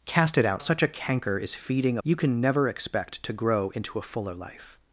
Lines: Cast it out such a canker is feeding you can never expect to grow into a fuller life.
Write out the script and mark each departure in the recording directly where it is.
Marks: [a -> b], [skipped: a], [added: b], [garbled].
Cast it out such a canker is feeding you can never expect to grow into a fuller life.